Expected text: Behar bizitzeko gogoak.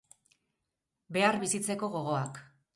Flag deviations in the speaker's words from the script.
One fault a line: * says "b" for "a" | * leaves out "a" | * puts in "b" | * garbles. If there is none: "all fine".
all fine